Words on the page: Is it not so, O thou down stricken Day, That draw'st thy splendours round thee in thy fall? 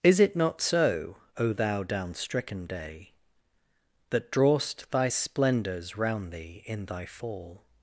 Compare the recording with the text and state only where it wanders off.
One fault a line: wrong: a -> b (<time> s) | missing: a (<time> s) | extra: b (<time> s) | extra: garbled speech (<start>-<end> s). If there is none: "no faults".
no faults